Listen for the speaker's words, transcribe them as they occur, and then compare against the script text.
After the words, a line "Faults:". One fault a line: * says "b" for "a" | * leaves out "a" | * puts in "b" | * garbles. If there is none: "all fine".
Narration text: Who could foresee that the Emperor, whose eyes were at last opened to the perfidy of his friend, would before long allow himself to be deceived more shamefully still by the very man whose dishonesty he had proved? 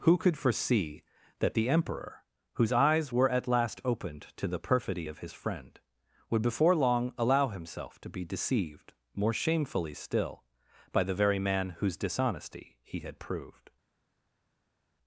Who could foresee that the Emperor, whose eyes were at last opened to the perfidy of his friend, would before long allow himself to be deceived more shamefully still by the very man whose dishonesty he had proved?
Faults:
all fine